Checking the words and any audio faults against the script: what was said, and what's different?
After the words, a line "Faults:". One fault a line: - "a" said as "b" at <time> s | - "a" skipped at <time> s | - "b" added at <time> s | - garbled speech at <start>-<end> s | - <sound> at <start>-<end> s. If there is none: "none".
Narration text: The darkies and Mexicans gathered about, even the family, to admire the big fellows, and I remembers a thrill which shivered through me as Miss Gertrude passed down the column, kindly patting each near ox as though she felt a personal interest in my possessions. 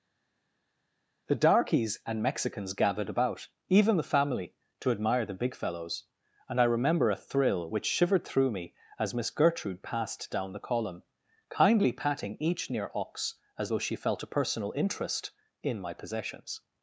The darkies and Mexicans gathered about, even the family, to admire the big fellows, and I remember a thrill which shivered through me as Miss Gertrude passed down the column, kindly patting each near ox as though she felt a personal interest in my possessions.
Faults:
- "remembers" said as "remember" at 6.6 s